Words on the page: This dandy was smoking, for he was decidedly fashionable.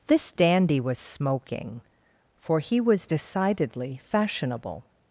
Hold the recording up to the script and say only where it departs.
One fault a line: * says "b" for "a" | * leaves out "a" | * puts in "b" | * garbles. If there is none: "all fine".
all fine